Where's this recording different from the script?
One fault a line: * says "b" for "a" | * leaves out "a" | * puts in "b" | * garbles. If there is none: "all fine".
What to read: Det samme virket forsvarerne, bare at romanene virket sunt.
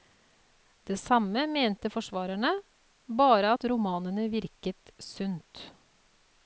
* says "mente" for "virket"